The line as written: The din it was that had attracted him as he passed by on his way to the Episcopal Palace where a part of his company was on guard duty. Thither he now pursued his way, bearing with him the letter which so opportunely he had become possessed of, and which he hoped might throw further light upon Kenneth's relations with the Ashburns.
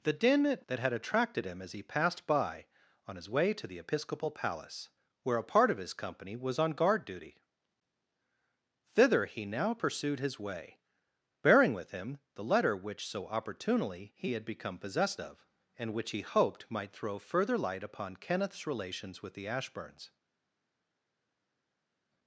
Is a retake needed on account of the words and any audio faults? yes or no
yes